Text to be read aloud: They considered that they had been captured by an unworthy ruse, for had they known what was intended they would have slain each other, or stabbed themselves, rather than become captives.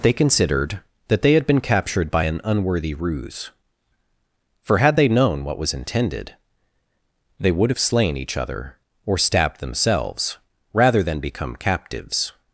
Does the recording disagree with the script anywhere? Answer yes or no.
no